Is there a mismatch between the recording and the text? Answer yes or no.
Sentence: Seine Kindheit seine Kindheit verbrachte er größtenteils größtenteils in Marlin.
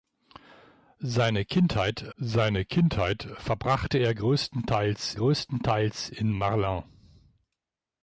no